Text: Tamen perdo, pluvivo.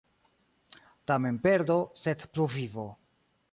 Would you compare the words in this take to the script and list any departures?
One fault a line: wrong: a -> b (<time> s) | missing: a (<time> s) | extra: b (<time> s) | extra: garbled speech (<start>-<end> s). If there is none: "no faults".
extra: sed (1.9 s)